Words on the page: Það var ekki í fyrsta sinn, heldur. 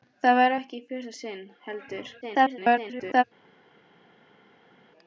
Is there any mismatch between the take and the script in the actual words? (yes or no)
yes